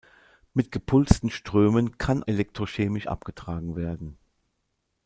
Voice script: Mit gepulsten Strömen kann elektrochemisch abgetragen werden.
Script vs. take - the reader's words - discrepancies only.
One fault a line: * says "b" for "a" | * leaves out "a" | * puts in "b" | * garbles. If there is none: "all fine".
all fine